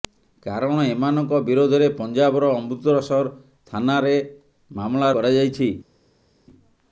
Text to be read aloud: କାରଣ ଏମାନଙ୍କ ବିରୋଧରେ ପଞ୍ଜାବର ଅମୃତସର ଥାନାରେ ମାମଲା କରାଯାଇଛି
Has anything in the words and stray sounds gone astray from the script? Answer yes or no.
no